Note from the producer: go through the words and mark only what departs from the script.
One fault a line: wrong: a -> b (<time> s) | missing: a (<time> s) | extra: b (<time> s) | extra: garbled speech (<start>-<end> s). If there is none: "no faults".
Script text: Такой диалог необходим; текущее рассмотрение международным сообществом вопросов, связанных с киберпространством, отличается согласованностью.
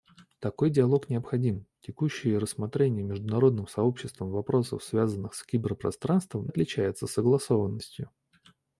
no faults